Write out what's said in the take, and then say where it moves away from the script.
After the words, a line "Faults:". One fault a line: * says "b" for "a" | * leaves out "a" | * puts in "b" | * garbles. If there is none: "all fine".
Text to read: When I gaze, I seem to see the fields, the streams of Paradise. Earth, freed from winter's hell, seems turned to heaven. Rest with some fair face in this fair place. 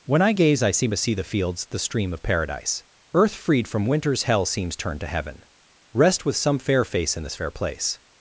When I gaze, I seem to see the fields, the stream of Paradise. Earth, freed from winter's hell, seems turned to heaven. Rest with some fair face in this fair place.
Faults:
* says "stream" for "streams"